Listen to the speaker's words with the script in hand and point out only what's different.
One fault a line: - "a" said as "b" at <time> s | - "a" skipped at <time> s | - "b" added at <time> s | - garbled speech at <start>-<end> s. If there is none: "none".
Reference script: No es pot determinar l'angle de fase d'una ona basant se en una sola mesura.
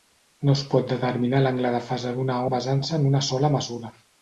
- "ona" skipped at 2.4 s